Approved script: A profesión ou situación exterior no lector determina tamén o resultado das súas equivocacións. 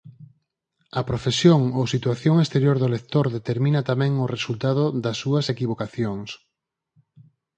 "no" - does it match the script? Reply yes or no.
no